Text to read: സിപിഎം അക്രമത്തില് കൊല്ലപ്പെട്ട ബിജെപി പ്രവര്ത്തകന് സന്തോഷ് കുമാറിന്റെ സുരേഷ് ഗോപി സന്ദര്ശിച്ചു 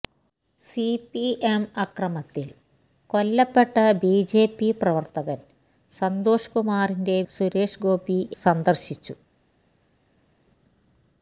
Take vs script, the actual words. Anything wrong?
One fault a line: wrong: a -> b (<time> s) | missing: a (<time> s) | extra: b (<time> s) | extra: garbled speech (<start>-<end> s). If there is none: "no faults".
no faults